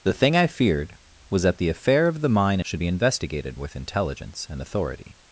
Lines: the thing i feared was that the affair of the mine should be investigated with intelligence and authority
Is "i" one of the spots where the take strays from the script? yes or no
no